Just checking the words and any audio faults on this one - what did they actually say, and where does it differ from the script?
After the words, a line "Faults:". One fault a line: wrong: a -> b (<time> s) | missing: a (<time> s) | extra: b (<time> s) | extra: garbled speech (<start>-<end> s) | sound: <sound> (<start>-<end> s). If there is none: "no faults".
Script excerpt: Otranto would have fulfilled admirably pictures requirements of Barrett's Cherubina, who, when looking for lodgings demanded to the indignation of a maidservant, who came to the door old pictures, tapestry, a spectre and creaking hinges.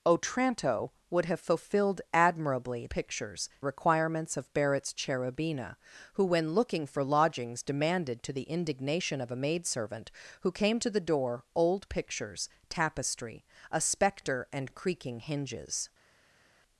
Otranto would have fulfilled admirably pictures requirements of Barrett's Cherubina, who, when looking for lodgings demanded to the indignation of a maidservant, who came to the door old pictures, tapestry, a spectre and creaking hinges.
Faults:
no faults